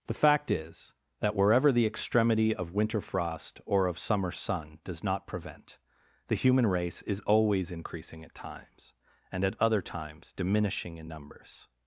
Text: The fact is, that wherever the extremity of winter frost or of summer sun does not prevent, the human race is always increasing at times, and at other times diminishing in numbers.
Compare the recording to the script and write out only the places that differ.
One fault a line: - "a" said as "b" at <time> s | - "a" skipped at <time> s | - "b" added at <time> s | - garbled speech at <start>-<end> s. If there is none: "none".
none